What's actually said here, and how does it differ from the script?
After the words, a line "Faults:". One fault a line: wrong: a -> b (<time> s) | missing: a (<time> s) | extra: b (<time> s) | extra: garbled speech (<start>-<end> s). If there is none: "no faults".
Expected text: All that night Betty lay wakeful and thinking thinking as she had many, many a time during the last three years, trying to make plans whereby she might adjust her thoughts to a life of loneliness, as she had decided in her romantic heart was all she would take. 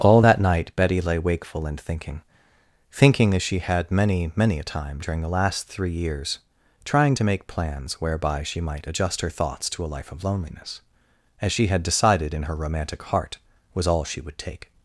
All that night Betty lay wakeful and thinking thinking as she had many, many a time during the last three years, trying to make plans whereby she might adjust her thoughts to a life of loneliness, as she had decided in her romantic heart was all she would take.
Faults:
no faults